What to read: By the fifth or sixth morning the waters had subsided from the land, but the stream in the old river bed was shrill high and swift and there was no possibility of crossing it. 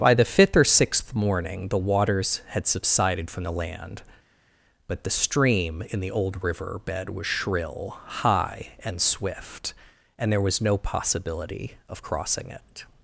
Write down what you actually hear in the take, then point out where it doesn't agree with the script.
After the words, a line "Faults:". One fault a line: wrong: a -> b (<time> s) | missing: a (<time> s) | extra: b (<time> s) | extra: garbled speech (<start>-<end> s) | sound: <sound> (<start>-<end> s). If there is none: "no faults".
By the fifth or sixth morning the waters had subsided from the land, but the stream in the old river bed was shrill high and swift and there was no possibility of crossing it.
Faults:
no faults